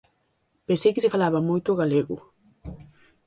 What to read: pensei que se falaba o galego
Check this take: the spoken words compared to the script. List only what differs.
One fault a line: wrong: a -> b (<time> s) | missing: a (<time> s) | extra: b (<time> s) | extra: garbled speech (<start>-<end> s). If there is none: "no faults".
extra: moito (1.5 s)